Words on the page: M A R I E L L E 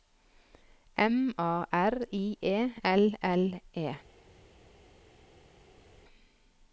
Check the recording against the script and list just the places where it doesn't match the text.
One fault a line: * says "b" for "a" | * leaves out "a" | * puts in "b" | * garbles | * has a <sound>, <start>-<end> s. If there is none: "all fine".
all fine